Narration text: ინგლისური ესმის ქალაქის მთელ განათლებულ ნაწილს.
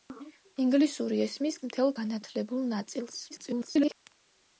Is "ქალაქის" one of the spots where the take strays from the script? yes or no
yes